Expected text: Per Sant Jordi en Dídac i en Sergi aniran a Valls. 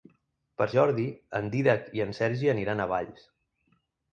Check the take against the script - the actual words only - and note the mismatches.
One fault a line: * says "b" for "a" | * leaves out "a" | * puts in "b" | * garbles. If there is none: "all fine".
* leaves out "Sant"